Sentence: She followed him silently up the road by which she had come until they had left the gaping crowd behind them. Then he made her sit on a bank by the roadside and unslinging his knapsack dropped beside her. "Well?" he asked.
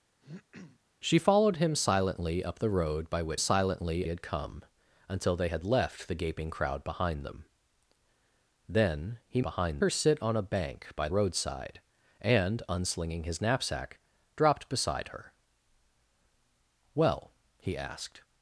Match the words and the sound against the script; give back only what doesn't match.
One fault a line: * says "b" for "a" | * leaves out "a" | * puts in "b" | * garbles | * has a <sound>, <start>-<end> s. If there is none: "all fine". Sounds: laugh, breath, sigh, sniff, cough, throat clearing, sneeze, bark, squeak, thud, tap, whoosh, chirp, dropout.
* has a throat clearing, 0.2-0.8 s
* says "silently" for "she"
* says "behind" for "made"
* leaves out "the"